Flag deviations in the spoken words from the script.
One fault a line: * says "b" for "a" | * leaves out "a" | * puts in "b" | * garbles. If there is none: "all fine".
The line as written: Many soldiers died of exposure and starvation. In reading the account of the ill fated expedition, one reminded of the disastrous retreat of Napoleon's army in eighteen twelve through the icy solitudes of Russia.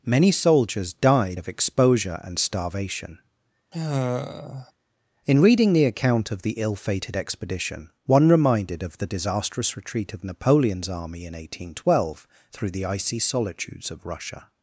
all fine